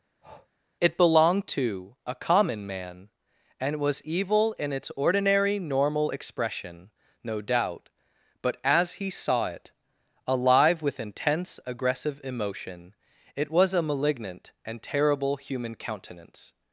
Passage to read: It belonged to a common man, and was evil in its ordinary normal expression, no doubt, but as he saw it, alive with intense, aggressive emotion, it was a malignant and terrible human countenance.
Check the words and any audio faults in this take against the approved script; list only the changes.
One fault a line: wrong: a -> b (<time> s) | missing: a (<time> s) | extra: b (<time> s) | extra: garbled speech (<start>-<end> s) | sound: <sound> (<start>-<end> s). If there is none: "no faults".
sound: breath (0.2-0.5 s)